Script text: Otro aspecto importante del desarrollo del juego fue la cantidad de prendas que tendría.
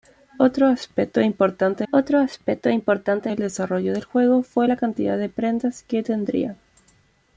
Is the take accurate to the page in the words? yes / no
no